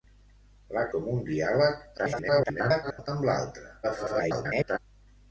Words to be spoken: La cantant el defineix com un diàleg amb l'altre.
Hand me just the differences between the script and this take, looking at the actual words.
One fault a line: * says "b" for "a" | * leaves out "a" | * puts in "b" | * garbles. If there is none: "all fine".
* leaves out "cantant el defineix"
* garbles
* garbles